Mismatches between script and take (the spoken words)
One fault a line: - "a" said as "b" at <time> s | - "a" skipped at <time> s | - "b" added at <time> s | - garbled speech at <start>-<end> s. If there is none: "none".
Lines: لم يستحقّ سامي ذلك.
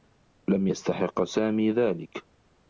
none